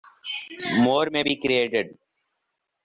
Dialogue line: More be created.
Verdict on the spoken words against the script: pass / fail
fail